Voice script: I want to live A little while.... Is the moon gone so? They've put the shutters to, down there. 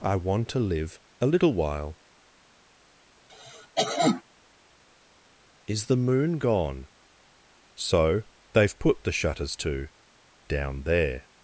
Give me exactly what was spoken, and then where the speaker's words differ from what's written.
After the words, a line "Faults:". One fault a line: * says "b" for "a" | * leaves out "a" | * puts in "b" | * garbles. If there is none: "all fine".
I want to live A little while.... Is the moon gone so? They've put the shutters to, down there.
Faults:
all fine